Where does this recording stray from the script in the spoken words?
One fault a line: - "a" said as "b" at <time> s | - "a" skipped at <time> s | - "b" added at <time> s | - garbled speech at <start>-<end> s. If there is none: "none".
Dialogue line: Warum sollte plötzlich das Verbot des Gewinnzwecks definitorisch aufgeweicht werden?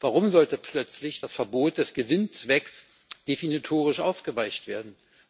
none